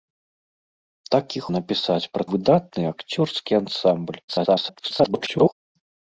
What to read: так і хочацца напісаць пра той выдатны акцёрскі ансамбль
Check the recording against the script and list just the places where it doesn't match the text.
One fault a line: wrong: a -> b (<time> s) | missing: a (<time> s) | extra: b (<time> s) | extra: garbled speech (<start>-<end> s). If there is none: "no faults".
missing: хочацца (1.4 s)
missing: той (2.2 s)
extra: garbled speech (4.3-5.5 s)